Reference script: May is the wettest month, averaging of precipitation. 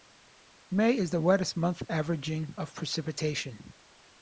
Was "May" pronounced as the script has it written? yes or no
yes